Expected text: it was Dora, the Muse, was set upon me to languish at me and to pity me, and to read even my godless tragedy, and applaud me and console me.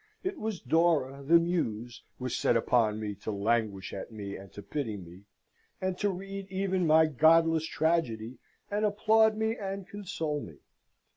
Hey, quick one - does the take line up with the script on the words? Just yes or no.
yes